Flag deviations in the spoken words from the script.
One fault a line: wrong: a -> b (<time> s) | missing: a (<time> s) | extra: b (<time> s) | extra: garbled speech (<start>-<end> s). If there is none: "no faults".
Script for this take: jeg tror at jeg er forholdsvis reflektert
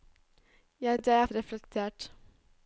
missing: tror (1.0 s)
missing: forholdsvis (1.3 s)